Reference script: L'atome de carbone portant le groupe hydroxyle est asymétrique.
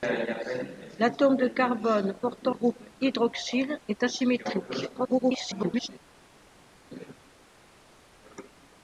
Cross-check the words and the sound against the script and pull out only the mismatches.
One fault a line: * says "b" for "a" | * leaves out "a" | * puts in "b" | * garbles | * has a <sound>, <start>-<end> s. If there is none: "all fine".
* leaves out "le"
* garbles